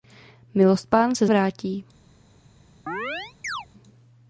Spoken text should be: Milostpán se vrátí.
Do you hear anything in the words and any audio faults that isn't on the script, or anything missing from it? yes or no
yes